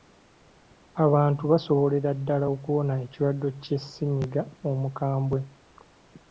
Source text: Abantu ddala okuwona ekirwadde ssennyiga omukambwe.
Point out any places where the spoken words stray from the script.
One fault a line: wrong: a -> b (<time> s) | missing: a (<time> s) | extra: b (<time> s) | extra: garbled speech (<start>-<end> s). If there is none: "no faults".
extra: basobolera (1.5 s)
extra: kya (3.6 s)